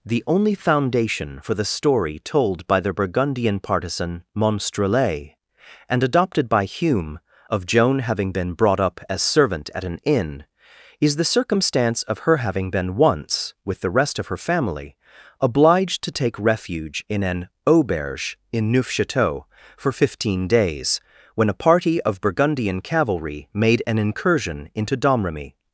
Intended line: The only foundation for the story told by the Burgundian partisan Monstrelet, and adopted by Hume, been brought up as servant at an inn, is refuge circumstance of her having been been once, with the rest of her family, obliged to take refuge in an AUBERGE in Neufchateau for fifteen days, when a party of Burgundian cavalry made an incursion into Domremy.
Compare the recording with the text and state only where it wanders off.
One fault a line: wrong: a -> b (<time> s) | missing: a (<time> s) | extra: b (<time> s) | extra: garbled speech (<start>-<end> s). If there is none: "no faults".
extra: of Joan having (7.5 s)
wrong: refuge -> the (11.2 s)
missing: been (12.9 s)